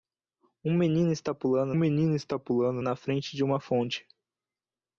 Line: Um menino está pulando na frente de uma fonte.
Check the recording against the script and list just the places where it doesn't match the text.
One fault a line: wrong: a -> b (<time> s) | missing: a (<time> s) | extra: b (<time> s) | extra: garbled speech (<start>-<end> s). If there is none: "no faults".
extra: menino está pulando (1.8 s)